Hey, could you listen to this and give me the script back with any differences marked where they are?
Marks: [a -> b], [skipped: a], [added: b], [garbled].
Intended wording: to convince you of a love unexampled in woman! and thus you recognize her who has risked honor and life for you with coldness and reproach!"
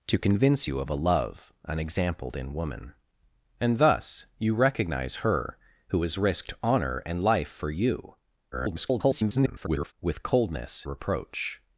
to convince you of a love unexampled in woman! and thus you recognize her who has risked honor and life for you [garbled] with coldness [skipped: and] reproach!"